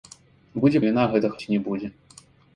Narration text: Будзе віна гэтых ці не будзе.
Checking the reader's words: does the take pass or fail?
pass